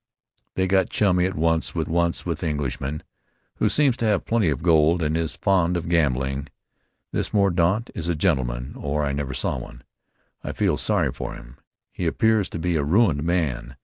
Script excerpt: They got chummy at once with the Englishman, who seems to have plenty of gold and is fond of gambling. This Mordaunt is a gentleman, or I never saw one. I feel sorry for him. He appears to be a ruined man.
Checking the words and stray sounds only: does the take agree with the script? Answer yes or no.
no